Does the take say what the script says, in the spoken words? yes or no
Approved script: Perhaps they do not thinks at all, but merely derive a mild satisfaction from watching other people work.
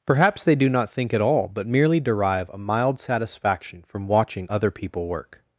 no